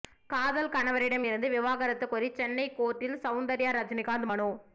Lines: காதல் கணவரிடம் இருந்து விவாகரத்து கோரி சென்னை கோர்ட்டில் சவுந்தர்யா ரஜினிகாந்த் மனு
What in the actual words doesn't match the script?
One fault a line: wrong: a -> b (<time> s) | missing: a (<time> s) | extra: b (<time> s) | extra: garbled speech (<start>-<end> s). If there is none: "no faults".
no faults